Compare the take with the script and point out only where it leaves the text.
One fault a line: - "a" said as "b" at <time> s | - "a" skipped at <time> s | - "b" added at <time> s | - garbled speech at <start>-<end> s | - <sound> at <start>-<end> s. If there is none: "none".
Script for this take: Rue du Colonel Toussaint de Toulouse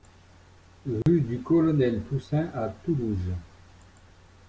- dropout at 1.0-1.1 s
- "de" said as "à" at 2.5 s